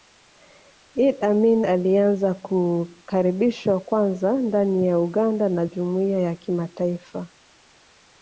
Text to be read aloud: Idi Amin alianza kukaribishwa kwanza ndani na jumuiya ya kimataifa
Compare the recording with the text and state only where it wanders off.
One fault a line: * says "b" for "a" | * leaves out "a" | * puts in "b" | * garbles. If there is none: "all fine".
* puts in "ya Uganda"